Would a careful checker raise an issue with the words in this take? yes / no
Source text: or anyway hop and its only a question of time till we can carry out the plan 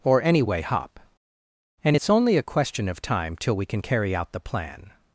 no